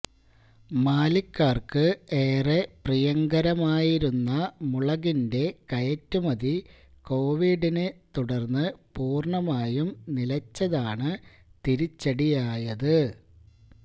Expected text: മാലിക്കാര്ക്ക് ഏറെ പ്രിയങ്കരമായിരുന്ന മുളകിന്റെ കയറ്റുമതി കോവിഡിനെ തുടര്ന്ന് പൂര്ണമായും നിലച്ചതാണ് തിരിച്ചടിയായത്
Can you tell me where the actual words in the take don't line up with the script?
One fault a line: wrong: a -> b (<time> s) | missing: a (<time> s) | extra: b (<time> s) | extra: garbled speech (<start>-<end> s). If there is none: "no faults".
no faults